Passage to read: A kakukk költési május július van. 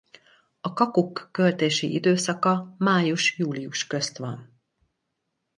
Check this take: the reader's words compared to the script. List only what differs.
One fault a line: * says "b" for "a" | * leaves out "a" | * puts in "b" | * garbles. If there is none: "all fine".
* puts in "időszaka"
* puts in "közt"